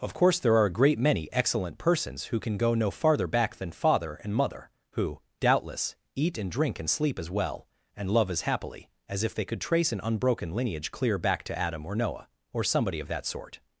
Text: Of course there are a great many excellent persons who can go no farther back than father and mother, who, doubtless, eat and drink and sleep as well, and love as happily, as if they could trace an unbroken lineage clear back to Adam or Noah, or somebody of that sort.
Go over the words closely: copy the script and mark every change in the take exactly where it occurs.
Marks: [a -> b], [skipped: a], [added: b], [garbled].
Of course there are a great many excellent persons who can go no farther back than father and mother, who, doubtless, eat and drink and sleep as well, and love as happily, as if they could trace an unbroken lineage clear back to Adam or Noah, or somebody of that sort.